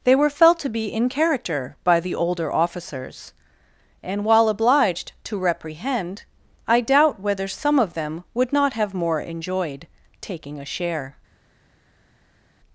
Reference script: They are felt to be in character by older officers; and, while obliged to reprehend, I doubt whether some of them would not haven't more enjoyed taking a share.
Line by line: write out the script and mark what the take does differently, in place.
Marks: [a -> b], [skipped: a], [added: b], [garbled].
They [are -> were] felt to be in character by [added: the] older officers; and, while obliged to reprehend, I doubt whether some of them would not [haven't -> have] more enjoyed taking a share.